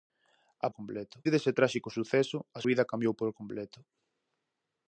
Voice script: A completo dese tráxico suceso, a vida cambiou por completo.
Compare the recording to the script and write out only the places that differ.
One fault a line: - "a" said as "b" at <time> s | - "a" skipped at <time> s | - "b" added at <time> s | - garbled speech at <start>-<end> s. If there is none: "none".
none